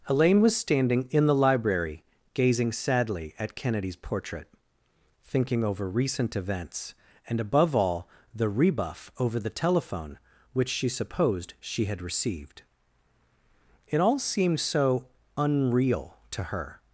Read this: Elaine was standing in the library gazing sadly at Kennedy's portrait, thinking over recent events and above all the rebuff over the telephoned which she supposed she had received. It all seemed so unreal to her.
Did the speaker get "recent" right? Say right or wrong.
right